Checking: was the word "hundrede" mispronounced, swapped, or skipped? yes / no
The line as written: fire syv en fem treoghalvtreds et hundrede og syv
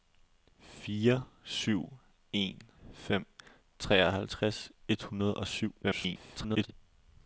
no